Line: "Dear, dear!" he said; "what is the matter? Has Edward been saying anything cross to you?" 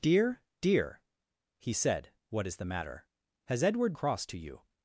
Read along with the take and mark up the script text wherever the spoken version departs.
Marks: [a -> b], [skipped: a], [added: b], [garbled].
"Dear, dear!" he said; "what is the matter? Has Edward [skipped: been saying anything] cross to you?"